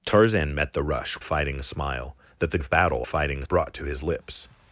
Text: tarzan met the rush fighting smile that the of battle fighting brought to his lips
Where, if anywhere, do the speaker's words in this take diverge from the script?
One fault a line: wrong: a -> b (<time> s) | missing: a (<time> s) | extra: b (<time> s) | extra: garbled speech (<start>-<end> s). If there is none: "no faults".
no faults